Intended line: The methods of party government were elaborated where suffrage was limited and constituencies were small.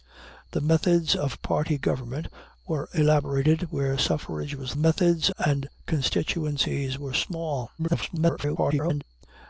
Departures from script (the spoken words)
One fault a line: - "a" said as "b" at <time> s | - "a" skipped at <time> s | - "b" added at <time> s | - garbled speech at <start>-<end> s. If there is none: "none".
- "limited" said as "methods" at 4.8 s
- garbled speech at 7.8-9.0 s